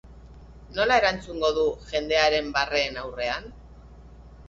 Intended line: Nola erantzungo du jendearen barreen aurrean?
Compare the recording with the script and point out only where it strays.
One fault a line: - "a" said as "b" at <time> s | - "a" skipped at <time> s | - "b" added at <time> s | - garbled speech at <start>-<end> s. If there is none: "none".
none